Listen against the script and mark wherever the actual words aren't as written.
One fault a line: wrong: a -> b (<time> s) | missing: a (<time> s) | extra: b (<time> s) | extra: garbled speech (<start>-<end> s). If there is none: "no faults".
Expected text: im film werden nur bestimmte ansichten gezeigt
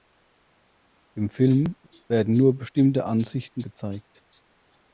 no faults